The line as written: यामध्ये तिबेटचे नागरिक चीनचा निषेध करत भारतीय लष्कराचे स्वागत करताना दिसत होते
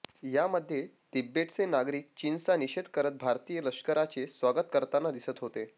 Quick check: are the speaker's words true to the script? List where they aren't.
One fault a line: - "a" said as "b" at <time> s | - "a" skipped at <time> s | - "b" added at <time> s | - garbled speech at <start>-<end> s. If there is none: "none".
none